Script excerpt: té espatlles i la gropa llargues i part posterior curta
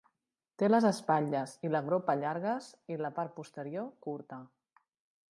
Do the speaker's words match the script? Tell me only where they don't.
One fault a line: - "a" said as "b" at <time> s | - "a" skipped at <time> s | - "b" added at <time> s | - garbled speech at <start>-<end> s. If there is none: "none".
- "les" added at 0.7 s
- "la" added at 3.0 s